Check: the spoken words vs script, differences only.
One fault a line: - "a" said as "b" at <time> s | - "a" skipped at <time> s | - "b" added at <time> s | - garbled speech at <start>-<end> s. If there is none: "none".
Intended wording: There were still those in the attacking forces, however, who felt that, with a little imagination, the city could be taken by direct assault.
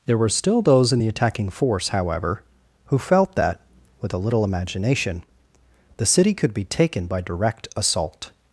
- "forces" said as "force" at 1.5 s